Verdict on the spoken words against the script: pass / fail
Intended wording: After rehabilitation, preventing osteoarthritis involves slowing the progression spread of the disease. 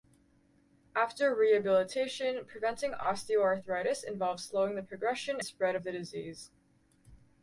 pass